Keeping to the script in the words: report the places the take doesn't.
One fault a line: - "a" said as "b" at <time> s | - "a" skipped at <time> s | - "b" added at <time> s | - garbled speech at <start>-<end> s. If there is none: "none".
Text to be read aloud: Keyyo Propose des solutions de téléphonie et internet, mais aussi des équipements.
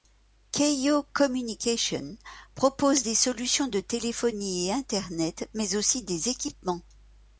- "Communications" added at 1.1 s